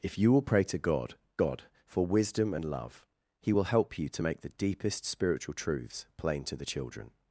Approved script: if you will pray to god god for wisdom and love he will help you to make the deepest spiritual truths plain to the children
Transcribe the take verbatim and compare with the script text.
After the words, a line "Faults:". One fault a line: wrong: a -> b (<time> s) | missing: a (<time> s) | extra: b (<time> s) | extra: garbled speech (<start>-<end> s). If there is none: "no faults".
if you will pray to god god for wisdom and love he will help you to make the deepest spiritual truths plain to the children
Faults:
no faults